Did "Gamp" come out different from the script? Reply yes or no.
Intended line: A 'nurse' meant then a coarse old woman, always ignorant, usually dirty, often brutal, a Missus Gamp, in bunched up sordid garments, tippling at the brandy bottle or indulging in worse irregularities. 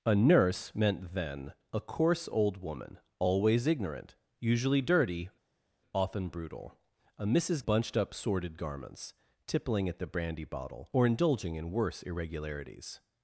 yes